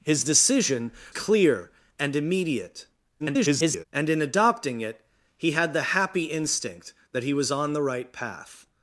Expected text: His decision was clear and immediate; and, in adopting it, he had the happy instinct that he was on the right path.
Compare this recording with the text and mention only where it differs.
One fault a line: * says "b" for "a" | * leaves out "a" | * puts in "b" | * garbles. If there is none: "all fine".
* leaves out "was"
* garbles